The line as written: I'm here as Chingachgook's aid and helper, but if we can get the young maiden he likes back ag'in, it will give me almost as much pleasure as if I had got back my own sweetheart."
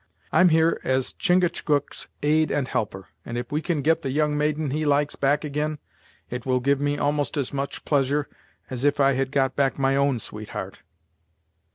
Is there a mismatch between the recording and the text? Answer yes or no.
yes